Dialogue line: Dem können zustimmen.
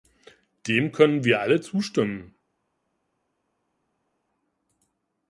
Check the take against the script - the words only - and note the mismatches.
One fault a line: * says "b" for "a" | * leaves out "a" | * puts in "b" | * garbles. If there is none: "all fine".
* puts in "wir alle"